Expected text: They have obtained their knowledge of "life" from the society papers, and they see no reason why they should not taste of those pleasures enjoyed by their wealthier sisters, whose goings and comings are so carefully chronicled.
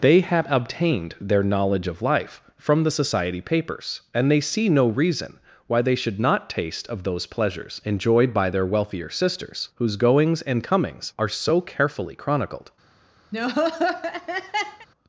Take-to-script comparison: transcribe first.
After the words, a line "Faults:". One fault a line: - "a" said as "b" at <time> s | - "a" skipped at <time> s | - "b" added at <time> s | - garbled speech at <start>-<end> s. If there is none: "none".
They have obtained their knowledge of "life" from the society papers, and they see no reason why they should not taste of those pleasures enjoyed by their wealthier sisters, whose goings and comings are so carefully chronicled.
Faults:
none